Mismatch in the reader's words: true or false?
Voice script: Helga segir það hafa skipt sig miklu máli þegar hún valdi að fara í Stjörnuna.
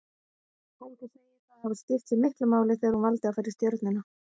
false